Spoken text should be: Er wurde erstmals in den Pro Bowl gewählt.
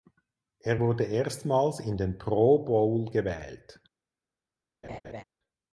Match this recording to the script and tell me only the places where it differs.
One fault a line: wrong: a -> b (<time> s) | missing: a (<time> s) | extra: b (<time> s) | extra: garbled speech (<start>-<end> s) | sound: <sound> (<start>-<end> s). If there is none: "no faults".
sound: laugh (4.8-5.2 s)